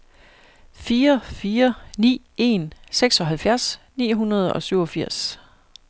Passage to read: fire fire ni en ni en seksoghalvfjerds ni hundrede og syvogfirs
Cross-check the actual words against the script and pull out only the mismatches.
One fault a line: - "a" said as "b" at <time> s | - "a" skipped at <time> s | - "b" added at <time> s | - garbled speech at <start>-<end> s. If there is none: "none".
- "ni en" skipped at 2.7 s